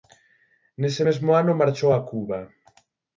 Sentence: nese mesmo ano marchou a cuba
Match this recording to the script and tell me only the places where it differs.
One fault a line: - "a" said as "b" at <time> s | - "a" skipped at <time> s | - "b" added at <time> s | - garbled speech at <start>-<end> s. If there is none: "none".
none